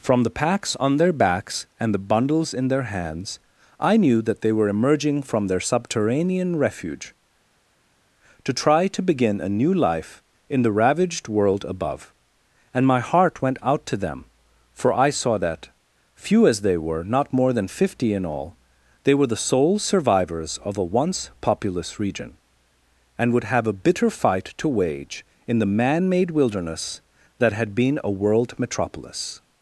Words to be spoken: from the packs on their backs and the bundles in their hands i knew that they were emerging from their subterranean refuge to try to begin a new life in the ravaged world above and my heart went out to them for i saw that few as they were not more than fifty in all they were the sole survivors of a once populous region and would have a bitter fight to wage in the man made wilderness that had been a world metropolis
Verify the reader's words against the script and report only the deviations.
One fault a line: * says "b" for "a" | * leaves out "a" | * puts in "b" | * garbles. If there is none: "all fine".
all fine